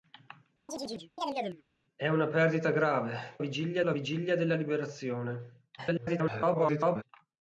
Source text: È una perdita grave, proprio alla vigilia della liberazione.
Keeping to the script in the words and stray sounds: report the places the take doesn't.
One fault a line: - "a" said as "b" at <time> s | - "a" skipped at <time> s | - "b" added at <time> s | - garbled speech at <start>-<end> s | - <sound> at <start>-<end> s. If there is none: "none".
- chirp at 0.7-1.6 s
- "proprio" said as "vigilia" at 3.4 s
- garbled speech at 5.8-7.0 s